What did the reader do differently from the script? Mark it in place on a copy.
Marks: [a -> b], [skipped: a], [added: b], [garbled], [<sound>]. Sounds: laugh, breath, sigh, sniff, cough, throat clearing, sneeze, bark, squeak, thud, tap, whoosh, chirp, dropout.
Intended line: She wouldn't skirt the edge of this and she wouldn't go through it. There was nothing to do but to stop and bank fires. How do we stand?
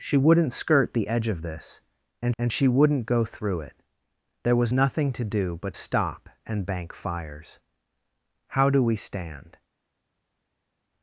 She wouldn't skirt the edge of this and [added: and] she wouldn't go through it. There was nothing to do but [skipped: to] stop and bank fires. How do we stand?